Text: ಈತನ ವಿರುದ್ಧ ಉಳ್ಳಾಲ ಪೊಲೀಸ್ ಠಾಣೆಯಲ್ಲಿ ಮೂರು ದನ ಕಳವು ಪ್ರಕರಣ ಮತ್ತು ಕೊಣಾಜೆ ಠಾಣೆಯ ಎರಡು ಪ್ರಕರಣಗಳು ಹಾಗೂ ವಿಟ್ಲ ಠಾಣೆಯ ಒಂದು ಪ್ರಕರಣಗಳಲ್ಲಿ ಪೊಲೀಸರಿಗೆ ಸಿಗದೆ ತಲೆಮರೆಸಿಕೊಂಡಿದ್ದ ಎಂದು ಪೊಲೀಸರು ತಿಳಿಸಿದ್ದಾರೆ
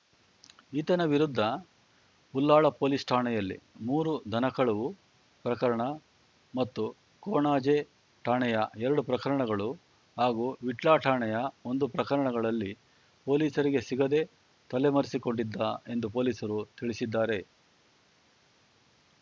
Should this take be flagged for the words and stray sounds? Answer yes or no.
no